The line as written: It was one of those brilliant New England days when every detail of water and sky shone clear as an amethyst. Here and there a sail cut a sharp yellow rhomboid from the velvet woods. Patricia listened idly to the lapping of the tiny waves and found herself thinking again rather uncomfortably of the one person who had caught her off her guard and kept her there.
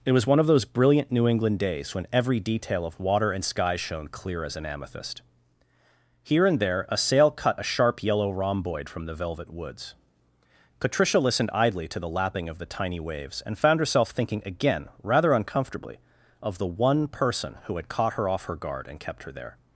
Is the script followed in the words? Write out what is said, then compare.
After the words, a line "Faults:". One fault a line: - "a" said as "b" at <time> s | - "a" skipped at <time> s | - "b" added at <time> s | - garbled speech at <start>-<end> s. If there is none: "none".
It was one of those brilliant New England days when every detail of water and sky shone clear as an amethyst. Here and there a sail cut a sharp yellow rhomboid from the velvet woods. Patricia listened idly to the lapping of the tiny waves and found herself thinking again rather uncomfortably of the one person who had caught her off her guard and kept her there.
Faults:
none